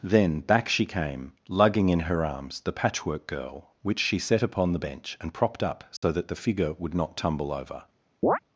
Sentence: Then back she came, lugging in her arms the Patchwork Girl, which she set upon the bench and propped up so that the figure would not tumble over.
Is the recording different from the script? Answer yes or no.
no